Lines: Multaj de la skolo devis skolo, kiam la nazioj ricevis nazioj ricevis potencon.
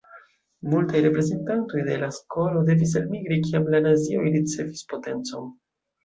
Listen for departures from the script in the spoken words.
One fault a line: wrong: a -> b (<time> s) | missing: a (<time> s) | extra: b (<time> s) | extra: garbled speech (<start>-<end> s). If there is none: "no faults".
extra: reprezentantoj (1.1 s)
wrong: skolo -> elmigri (3.0 s)
missing: nazioj ricevis (4.8 s)